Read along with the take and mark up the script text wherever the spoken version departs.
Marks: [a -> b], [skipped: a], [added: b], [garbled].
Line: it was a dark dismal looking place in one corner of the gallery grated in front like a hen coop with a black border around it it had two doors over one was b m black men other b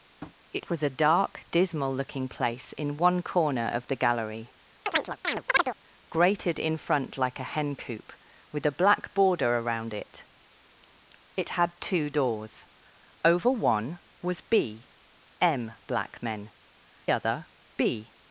it was a dark dismal looking place in one corner of the gallery grated in front like a hen coop with a black border around it it had two doors over one was b m black men other b